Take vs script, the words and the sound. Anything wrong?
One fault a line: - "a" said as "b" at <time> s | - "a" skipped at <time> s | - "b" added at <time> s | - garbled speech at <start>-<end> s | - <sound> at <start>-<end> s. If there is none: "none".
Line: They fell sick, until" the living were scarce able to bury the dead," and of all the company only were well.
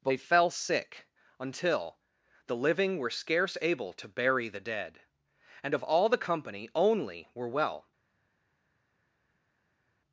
none